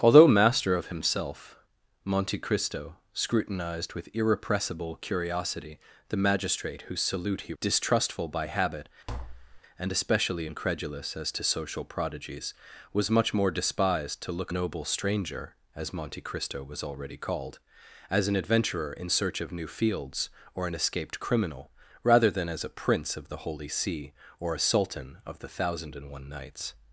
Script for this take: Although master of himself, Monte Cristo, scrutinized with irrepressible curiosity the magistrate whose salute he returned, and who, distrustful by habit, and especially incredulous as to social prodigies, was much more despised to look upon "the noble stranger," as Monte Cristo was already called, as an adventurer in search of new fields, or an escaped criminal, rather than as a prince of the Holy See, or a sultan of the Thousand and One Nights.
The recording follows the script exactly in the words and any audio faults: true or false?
false